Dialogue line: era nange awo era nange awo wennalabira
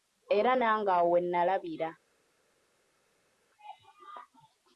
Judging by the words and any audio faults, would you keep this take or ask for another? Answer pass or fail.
fail